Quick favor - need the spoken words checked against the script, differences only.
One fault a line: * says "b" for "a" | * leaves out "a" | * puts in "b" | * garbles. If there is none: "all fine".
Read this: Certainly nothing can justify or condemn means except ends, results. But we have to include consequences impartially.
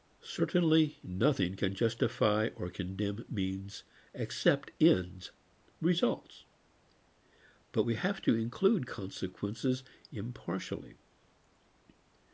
all fine